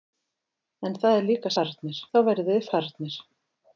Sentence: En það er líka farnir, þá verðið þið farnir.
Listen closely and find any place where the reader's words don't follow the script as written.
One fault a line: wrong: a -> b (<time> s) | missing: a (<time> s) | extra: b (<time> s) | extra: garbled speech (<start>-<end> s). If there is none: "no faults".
no faults